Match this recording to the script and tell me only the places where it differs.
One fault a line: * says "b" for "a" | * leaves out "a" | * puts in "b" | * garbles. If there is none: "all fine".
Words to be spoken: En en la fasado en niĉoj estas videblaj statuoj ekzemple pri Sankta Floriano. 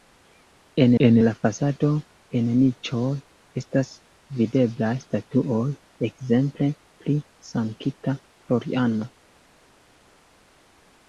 all fine